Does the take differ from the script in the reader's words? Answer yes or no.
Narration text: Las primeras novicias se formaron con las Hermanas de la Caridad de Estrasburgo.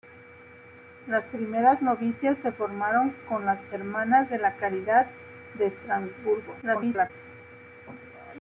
yes